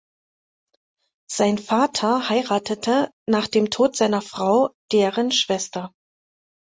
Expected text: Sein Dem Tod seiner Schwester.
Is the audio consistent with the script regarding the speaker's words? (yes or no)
no